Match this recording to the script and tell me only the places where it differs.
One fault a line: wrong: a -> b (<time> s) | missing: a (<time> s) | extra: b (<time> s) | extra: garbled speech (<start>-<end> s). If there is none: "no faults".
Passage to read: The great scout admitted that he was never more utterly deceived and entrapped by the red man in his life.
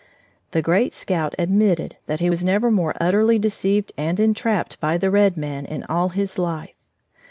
extra: all (5.8 s)